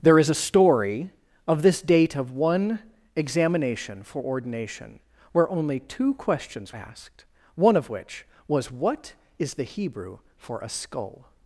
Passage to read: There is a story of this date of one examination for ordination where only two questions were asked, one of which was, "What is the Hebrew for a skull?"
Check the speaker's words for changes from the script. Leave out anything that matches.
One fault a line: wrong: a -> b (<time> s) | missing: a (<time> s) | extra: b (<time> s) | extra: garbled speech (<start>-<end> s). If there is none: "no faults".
missing: were (6.7 s)